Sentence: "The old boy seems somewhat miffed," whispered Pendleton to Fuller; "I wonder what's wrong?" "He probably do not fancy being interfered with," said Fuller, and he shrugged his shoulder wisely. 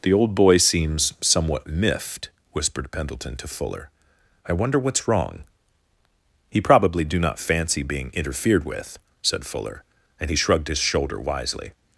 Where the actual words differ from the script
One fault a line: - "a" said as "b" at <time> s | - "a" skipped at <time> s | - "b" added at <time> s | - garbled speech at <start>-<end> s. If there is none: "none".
none